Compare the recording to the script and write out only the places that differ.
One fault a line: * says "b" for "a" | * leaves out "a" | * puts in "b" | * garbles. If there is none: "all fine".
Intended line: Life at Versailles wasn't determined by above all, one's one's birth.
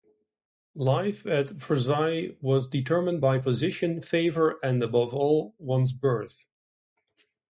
* says "was" for "wasn't"
* puts in "position favour and"
* leaves out "one's"